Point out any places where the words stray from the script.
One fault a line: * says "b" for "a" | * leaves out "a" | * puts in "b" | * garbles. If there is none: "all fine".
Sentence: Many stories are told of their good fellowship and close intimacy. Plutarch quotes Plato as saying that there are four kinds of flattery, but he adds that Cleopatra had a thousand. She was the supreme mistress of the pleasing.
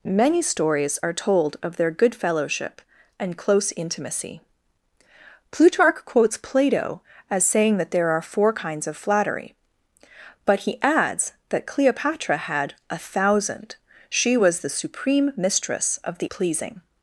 all fine